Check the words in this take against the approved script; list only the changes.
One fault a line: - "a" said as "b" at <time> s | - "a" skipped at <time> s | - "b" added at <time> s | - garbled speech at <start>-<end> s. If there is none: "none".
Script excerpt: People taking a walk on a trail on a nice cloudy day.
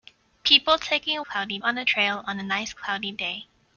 - "walk" said as "cloudy" at 1.2 s